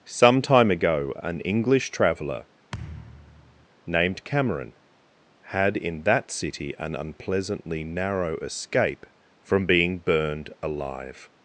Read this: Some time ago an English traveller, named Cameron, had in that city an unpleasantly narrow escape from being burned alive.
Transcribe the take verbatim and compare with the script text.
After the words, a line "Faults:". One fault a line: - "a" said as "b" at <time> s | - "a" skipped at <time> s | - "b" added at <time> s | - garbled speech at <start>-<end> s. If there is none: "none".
Some time ago an English traveller, named Cameron, had in that city an unpleasantly narrow escape from being burned alive.
Faults:
none